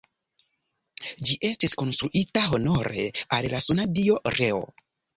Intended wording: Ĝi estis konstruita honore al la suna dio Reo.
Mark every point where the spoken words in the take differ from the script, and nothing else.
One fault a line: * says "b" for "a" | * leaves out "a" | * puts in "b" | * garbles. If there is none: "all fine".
all fine